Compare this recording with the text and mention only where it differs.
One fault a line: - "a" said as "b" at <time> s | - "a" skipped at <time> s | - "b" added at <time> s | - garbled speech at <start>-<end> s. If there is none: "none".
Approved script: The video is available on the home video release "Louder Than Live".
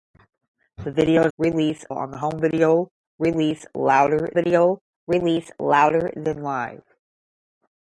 - "available" said as "release" at 1.4 s
- "video release Louder" added at 4.3 s